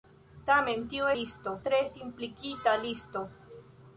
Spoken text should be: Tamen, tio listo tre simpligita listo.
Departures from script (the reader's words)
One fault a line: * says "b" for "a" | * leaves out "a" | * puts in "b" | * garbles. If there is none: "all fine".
all fine